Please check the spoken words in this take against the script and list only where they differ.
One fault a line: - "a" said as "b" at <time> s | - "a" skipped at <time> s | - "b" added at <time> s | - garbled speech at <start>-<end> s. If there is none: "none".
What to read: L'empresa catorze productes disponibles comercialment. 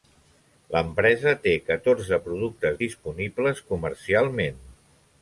- "té" added at 1.4 s